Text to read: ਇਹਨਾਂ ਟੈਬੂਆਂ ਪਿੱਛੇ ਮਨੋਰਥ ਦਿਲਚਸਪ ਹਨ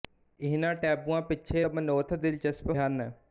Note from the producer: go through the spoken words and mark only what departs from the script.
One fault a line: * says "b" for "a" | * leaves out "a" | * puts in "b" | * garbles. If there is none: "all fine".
all fine